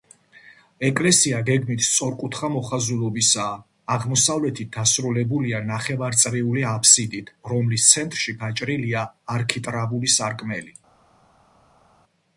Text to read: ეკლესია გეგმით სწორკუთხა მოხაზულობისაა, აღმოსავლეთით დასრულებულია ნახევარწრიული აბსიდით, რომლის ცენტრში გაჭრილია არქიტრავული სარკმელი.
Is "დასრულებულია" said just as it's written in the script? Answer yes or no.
yes